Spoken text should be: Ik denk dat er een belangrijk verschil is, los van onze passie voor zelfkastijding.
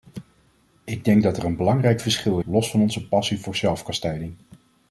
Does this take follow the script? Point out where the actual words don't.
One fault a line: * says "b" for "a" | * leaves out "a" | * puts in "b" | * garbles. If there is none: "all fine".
* leaves out "is"